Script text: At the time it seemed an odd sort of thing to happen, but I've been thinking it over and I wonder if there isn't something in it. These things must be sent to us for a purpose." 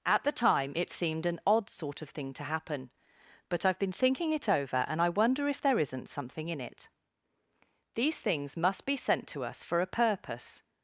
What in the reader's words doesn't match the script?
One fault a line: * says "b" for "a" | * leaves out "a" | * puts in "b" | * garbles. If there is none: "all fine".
all fine